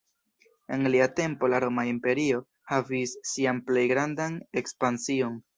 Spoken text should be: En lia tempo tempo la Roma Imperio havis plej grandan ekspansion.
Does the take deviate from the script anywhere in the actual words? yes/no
yes